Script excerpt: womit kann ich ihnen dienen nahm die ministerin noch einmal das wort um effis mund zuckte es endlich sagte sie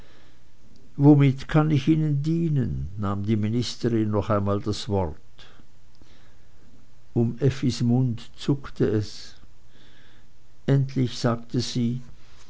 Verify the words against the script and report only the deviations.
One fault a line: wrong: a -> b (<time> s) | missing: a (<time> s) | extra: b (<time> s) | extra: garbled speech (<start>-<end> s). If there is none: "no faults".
no faults